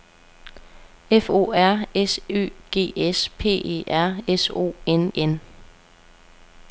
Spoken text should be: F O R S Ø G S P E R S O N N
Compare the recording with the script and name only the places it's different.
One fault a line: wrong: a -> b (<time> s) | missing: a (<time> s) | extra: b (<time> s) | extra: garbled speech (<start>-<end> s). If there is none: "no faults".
no faults